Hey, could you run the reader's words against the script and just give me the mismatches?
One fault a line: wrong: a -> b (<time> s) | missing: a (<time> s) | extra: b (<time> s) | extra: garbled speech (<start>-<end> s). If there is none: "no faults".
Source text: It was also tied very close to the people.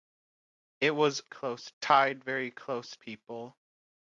wrong: also -> close (1.3 s)
missing: to the (3.0 s)